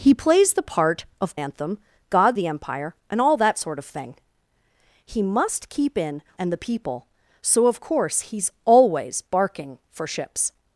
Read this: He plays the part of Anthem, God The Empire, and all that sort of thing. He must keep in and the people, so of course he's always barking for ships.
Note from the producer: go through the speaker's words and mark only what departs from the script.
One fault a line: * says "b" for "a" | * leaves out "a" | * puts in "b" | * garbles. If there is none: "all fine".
all fine